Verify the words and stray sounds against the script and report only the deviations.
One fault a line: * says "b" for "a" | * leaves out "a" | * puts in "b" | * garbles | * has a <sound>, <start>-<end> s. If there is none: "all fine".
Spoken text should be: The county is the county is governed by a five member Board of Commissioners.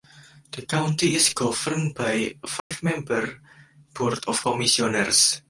* leaves out "the county is"
* has a dropout, 2.6-2.7 s